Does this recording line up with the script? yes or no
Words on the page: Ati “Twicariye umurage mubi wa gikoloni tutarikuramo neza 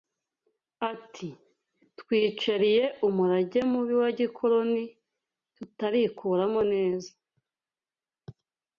yes